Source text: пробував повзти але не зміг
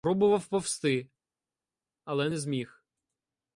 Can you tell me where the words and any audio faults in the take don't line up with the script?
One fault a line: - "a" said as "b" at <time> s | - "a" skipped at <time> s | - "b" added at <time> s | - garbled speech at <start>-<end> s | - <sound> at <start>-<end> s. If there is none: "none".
none